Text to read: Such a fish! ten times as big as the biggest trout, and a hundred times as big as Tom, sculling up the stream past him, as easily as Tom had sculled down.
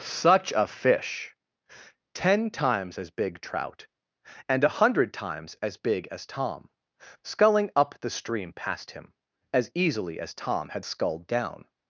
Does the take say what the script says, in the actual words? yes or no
no